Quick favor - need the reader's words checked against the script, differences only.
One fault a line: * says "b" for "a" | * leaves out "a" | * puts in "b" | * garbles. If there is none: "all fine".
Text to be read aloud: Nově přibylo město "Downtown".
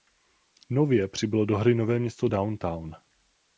* puts in "do hry nové"